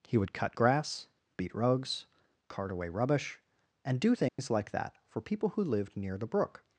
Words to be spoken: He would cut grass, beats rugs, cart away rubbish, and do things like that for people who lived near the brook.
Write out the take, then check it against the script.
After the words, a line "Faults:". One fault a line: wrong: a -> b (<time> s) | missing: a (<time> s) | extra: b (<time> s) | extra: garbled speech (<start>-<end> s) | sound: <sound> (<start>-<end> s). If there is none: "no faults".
He would cut grass, beat rugs, cart away rubbish, and do things like that for people who lived near the brook.
Faults:
wrong: beats -> beat (1.4 s)
sound: dropout (4.3-4.4 s)